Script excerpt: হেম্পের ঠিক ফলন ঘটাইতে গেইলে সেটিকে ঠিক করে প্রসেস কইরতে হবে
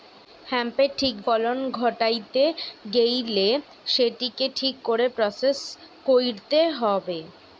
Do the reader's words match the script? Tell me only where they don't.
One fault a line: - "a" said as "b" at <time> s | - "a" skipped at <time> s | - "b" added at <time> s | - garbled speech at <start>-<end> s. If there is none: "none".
none